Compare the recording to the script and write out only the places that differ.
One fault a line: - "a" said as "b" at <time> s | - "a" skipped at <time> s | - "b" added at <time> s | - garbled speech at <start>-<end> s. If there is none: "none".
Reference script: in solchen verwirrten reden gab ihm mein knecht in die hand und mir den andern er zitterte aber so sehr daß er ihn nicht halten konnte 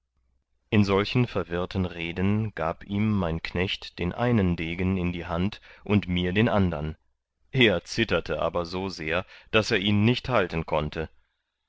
- "den einen degen" added at 4.0 s